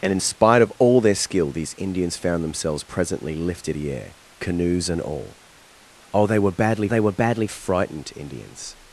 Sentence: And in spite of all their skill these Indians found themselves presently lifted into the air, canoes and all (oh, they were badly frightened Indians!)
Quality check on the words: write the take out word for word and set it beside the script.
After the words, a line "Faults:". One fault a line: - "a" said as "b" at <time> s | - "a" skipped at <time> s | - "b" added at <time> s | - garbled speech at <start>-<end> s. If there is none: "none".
And in spite of all their skill these Indians found themselves presently lifted the air, canoes and all (oh, they were badly they were badly frightened Indians!)
Faults:
- "into" skipped at 3.8 s
- "they were badly" added at 6.9 s